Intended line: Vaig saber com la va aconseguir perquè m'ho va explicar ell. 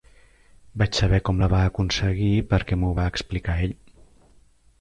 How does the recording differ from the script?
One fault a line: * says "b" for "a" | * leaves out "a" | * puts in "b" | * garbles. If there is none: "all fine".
all fine